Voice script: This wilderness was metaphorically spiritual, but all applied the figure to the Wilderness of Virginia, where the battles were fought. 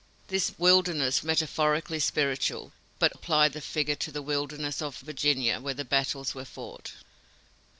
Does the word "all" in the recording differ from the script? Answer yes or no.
yes